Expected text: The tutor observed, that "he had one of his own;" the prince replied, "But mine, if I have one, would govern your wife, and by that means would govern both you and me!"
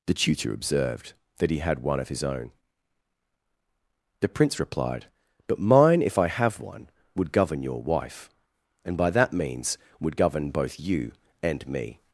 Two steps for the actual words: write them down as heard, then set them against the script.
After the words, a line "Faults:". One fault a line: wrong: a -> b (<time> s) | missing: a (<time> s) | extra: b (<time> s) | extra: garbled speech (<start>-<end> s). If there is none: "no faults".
The tutor observed, that "he had one of his own;" the prince replied, "But mine, if I have one, would govern your wife, and by that means would govern both you and me!"
Faults:
no faults